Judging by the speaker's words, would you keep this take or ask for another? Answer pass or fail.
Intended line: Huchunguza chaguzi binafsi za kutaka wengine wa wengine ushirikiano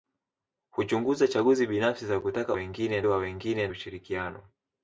pass